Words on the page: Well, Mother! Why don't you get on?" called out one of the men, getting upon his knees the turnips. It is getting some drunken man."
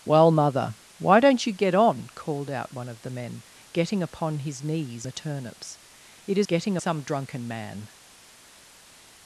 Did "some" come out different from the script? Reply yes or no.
no